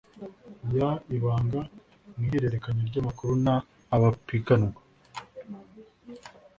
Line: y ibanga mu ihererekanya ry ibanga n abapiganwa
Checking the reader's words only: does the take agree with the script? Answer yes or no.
no